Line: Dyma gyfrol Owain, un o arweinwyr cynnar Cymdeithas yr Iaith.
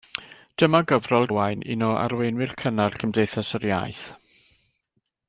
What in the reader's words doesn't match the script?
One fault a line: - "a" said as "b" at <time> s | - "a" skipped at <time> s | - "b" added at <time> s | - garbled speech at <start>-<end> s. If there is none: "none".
none